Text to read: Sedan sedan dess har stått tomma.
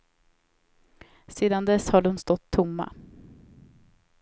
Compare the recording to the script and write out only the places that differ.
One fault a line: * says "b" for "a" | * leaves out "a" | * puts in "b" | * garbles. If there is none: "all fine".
* leaves out "sedan"
* puts in "de"